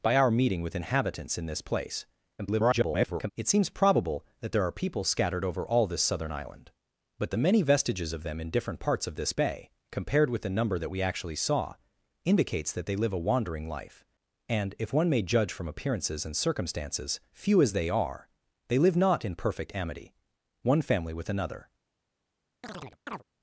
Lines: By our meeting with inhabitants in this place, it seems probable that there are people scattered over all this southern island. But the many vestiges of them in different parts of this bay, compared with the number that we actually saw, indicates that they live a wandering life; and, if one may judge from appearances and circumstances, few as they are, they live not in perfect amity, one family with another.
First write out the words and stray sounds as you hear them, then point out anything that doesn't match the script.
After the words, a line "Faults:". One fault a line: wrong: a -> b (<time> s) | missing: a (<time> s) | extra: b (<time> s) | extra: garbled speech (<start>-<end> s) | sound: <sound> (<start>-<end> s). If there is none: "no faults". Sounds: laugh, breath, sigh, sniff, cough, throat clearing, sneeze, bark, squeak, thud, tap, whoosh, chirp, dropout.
By our meeting with inhabitants in this place, [garbled] it seems probable that there are people scattered over all this southern island. But the many vestiges of them in different parts of this bay, compared with the number that we actually saw, indicates that they live a wandering life; and, if one may judge from appearances and circumstances, few as they are, they live not in perfect amity, one family with another.
Faults:
extra: garbled speech (2.4-3.3 s)
sound: chirp (22.6-23.2 s)